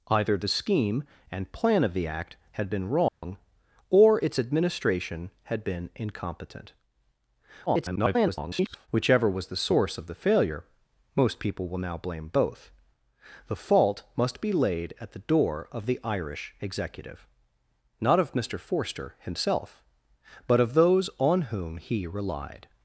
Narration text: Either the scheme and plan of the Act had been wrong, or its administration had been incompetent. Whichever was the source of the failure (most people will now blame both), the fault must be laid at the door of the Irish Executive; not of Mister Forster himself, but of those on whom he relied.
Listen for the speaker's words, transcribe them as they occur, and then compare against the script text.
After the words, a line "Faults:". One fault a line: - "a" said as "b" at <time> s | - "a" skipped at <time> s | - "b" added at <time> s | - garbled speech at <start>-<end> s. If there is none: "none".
Either the scheme and plan of the Act had been wrong, or its administration had been incompetent. [garbled] Whichever was the source of the failure (most people will now blame both), the fault must be laid at the door of the Irish Executive; not of Mister Forster himself, but of those on whom he relied.
Faults:
- garbled speech at 7.7-8.9 s